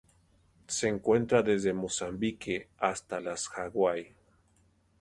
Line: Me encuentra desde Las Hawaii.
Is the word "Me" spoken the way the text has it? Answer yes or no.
no